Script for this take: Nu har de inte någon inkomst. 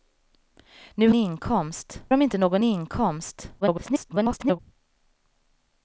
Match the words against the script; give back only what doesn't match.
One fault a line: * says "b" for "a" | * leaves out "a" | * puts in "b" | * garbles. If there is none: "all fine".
* says "inkomst" for "har"
* garbles